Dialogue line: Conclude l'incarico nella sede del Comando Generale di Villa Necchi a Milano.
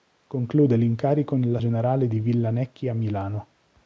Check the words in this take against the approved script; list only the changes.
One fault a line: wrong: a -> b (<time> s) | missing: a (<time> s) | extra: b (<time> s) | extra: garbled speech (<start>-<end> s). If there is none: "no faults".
missing: sede del Comando (1.6 s)